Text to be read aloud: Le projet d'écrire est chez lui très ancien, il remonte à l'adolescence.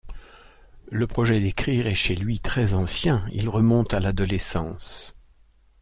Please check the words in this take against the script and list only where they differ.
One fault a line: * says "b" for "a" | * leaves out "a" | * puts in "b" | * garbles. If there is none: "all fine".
all fine